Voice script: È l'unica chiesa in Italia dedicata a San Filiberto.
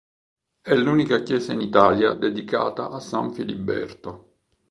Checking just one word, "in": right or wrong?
right